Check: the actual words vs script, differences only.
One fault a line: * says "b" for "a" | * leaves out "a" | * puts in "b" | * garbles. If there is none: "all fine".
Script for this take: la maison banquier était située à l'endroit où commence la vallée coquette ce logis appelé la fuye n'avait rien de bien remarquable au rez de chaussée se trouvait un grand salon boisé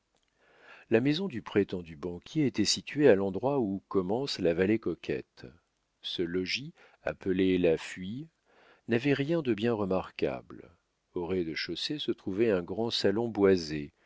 * puts in "du prétendu"